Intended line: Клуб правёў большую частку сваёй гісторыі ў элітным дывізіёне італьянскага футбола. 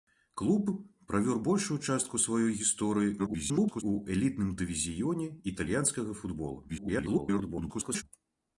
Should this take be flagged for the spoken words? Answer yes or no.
yes